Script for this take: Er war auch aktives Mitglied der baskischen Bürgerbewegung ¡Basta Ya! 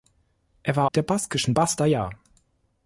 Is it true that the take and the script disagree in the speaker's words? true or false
true